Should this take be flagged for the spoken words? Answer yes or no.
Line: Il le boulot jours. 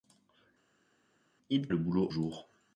no